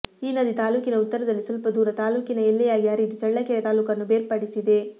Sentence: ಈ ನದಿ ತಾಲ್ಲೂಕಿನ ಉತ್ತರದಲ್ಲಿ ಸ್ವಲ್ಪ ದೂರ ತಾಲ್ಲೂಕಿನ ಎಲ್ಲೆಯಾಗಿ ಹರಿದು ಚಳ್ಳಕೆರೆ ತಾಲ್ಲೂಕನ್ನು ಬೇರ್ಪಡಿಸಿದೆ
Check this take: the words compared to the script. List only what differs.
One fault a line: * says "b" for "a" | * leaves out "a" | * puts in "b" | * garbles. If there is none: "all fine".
all fine